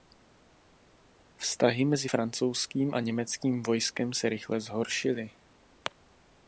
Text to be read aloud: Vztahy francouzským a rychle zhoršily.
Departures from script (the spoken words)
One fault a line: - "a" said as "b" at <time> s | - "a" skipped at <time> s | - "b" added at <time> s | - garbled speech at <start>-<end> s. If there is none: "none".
- "mezi" added at 1.9 s
- "německým vojskem se" added at 3.0 s